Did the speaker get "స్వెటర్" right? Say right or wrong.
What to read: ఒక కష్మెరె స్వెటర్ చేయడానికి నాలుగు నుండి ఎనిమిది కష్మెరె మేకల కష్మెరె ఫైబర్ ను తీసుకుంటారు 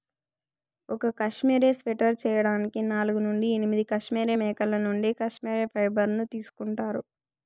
right